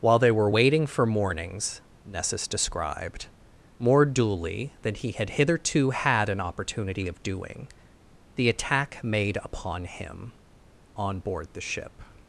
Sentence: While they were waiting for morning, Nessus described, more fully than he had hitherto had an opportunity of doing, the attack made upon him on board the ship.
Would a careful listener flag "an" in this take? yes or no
no